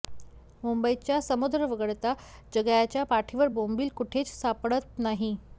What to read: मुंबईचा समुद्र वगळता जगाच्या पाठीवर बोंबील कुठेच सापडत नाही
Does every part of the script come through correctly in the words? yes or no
yes